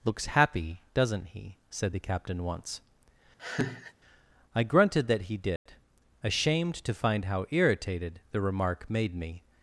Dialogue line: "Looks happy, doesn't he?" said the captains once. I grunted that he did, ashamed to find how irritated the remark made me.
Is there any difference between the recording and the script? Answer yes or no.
yes